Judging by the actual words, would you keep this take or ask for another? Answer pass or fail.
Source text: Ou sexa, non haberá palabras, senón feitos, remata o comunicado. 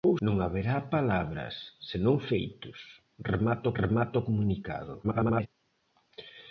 fail